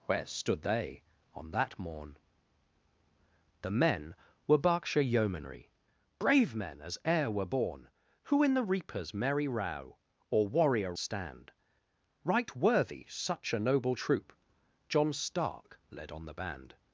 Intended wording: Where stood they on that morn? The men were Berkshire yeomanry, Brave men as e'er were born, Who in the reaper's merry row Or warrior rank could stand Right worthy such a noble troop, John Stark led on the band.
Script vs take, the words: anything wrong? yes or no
yes